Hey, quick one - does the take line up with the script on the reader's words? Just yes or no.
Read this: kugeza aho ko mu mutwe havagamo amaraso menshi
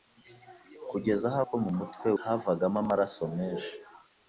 yes